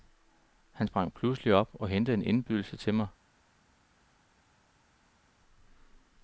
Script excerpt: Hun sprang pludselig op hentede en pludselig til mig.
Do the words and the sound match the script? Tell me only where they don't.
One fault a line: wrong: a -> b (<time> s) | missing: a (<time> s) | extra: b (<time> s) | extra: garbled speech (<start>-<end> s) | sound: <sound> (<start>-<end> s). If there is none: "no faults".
wrong: Hun -> Han (0.7 s)
extra: og (1.7 s)
wrong: pludselig -> indbydelse (2.2 s)